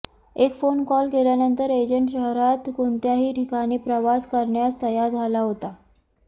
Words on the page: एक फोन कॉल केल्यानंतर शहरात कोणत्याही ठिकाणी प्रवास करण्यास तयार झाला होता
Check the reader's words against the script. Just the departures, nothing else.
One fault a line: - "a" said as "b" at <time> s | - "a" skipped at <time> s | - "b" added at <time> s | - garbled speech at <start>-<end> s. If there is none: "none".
- "एजंट" added at 1.7 s